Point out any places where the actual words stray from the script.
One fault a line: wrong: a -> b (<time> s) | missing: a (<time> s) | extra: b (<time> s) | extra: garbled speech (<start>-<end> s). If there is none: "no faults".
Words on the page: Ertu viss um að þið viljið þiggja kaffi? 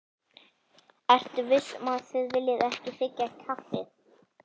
extra: ekki (2.7 s)